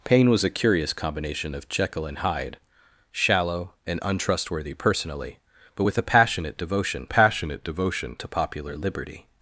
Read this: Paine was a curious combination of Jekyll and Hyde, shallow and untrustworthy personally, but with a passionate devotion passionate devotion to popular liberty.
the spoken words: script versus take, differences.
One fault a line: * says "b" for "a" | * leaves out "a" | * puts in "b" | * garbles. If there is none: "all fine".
all fine